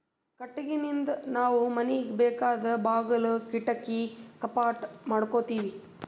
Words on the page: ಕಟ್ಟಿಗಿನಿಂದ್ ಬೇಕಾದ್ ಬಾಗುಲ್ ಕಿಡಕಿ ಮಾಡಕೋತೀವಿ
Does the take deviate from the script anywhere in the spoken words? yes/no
yes